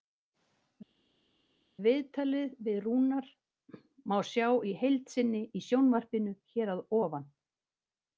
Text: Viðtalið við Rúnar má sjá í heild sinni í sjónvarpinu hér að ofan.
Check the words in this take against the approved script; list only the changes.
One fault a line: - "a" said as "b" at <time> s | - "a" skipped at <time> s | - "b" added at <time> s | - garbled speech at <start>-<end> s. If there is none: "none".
none